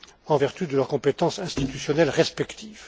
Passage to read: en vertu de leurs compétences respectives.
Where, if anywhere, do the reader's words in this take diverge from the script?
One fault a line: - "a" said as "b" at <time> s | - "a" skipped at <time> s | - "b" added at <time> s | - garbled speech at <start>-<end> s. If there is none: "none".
- "institutionnelles" added at 1.4 s